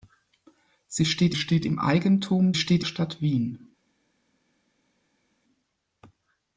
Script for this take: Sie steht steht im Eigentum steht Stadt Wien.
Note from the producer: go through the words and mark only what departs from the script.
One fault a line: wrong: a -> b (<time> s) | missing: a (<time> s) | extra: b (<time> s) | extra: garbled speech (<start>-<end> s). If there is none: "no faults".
no faults